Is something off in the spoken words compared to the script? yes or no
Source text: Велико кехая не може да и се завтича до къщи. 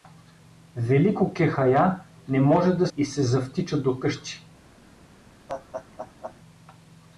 no